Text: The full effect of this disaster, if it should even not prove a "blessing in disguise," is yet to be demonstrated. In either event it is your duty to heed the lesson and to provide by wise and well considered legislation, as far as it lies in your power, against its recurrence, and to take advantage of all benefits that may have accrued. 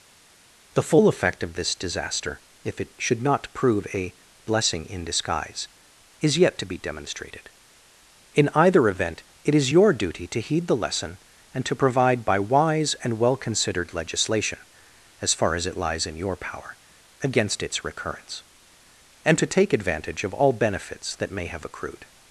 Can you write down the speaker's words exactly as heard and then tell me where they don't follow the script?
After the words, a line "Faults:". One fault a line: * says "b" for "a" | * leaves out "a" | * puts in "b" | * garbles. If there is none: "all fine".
The full effect of this disaster, if it should not prove a "blessing in disguise," is yet to be demonstrated. In either event it is your duty to heed the lesson and to provide by wise and well considered legislation, as far as it lies in your power, against its recurrence, and to take advantage of all benefits that may have accrued.
Faults:
* leaves out "even"